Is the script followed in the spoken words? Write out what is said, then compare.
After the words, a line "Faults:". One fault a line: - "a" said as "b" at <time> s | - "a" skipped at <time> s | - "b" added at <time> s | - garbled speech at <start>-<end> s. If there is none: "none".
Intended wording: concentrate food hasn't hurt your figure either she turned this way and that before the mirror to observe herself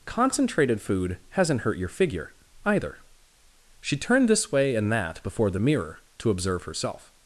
concentrated food hasn't hurt your figure either she turned this way and that before the mirror to observe herself
Faults:
- "concentrate" said as "concentrated" at 0.1 s